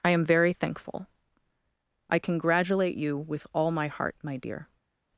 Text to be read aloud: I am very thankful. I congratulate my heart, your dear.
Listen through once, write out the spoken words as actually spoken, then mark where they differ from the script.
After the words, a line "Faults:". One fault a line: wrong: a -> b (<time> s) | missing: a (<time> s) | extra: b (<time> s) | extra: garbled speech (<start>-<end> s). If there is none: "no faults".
I am very thankful. I congratulate you with all my heart, my dear.
Faults:
extra: you with all (3.0 s)
wrong: your -> my (4.2 s)